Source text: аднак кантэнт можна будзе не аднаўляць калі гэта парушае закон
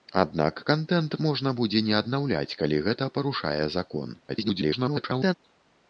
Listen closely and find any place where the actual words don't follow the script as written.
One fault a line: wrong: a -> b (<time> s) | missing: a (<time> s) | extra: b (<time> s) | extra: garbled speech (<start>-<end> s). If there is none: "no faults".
extra: garbled speech (4.3-5.3 s)